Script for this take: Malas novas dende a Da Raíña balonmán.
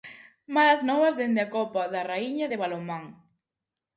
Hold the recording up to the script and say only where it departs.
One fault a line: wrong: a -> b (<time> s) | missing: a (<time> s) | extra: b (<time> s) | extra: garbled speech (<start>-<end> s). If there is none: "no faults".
extra: Copa (1.6 s)
extra: de (2.5 s)